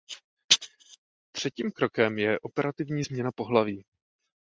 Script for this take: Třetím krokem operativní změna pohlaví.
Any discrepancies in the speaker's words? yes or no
yes